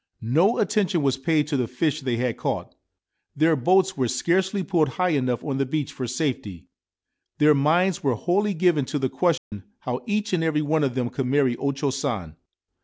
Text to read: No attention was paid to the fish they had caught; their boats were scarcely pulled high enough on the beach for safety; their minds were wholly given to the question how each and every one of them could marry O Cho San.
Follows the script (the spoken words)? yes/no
yes